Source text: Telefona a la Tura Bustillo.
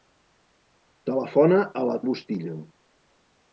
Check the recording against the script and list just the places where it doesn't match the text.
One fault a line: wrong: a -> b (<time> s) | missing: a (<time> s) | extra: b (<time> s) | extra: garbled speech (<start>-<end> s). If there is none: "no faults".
missing: Tura (2.0 s)